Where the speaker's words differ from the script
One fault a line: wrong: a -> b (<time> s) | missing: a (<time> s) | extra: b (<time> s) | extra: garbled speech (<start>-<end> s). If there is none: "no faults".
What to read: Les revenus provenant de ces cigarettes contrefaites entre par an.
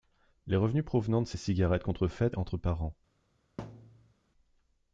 no faults